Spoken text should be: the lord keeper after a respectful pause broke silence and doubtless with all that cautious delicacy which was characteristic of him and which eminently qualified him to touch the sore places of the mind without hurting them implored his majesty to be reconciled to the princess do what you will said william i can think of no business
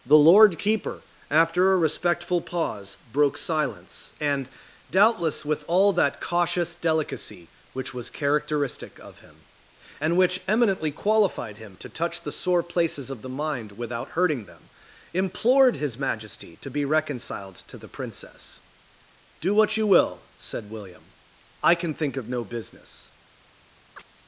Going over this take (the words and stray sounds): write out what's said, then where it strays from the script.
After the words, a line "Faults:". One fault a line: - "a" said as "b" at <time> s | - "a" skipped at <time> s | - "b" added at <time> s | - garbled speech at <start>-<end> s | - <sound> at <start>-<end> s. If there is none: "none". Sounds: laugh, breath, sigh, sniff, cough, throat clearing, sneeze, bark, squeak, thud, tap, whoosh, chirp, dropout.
the lord keeper after a respectful pause broke silence and doubtless with all that cautious delicacy which was characteristic of him and which eminently qualified him to touch the sore places of the mind without hurting them implored his majesty to be reconciled to the princess do what you will said william i can think of no business
Faults:
- chirp at 24.0-24.1 s